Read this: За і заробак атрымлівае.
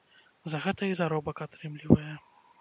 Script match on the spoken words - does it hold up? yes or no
no